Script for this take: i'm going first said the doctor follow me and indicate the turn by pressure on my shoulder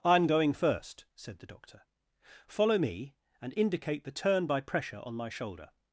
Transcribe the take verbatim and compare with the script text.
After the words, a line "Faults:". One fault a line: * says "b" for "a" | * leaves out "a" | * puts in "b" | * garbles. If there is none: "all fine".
i'm going first said the doctor follow me and indicate the turn by pressure on my shoulder
Faults:
all fine